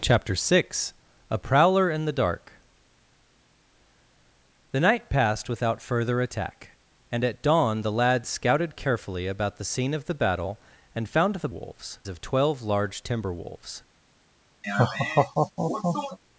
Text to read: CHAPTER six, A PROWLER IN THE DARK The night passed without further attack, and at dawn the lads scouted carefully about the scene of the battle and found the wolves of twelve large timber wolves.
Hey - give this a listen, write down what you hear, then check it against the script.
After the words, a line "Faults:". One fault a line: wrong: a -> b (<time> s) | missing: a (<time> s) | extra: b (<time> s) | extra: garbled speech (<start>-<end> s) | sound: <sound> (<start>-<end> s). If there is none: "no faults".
CHAPTER six, A PROWLER IN THE DARK The night passed without further attack, and at dawn the lads scouted carefully about the scene of the battle and found the wolves of twelve large timber wolves.
Faults:
sound: laugh (14.6-16.2 s)